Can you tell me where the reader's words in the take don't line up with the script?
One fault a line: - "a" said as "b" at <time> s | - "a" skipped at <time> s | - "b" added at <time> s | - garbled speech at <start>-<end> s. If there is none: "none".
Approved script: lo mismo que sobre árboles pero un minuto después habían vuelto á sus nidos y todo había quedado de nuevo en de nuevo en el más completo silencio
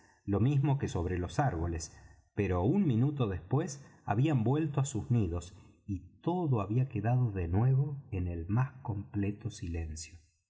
- "los" added at 1.2 s
- "de nuevo en" skipped at 8.3 s